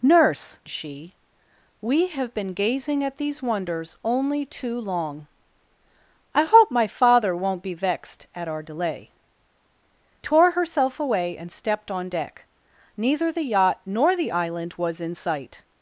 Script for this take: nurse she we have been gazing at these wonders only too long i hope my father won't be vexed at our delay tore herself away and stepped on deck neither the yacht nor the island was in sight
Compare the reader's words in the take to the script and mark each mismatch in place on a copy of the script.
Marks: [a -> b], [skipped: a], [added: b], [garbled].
nurse she we have been gazing at these wonders only too long i hope my father won't be vexed at our delay tore herself away and stepped on deck neither the yacht nor the island was in sight